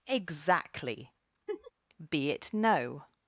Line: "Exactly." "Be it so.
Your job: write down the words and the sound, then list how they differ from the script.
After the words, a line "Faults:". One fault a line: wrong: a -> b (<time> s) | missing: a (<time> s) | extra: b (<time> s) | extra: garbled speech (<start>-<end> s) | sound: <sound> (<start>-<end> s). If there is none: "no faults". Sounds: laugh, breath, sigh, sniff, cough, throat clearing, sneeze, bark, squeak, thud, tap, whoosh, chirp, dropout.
"Exactly." "Be it no.
Faults:
sound: laugh (1.5-1.7 s)
wrong: so -> no (2.5 s)